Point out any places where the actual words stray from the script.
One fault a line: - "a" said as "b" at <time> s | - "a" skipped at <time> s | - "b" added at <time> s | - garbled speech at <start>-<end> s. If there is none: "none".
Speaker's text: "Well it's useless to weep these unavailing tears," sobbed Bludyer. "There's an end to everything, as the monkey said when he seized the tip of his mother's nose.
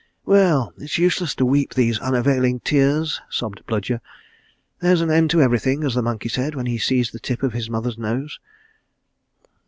none